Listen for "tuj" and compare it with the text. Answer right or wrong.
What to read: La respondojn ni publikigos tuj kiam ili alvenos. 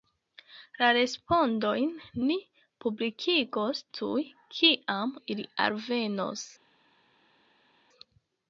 right